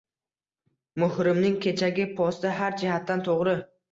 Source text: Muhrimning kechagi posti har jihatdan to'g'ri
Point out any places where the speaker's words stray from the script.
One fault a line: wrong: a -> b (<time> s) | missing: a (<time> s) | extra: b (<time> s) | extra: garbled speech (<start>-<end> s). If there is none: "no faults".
no faults